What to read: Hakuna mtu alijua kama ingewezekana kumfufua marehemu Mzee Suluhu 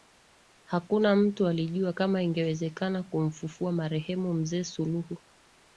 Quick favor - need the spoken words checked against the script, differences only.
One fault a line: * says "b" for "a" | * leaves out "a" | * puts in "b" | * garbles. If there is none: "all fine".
all fine